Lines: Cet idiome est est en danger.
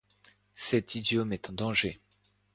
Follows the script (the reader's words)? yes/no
no